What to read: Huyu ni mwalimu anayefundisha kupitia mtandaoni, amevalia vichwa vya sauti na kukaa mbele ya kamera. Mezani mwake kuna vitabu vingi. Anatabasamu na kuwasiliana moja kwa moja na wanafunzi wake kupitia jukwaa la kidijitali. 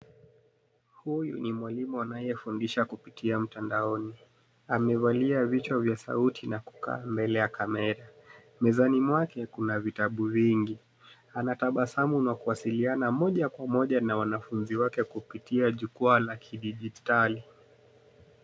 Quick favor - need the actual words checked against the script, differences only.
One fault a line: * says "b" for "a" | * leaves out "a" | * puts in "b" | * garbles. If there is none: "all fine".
all fine